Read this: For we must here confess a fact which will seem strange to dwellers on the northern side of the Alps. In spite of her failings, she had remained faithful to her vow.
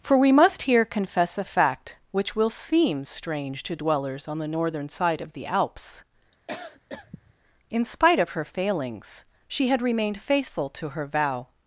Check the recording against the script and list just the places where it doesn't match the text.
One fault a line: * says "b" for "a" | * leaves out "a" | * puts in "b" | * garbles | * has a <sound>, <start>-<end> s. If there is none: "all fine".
* has a cough, 6.3-7.3 s